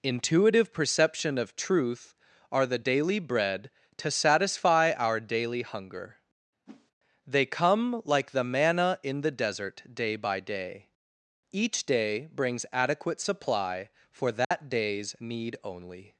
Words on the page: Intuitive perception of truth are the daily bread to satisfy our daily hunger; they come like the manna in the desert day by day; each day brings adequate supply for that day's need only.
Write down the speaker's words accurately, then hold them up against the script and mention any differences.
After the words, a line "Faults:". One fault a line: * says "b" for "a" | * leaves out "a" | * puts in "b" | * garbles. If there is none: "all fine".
Intuitive perception of truth are the daily bread to satisfy our daily hunger; they come like the manna in the desert day by day; each day brings adequate supply for that day's need only.
Faults:
all fine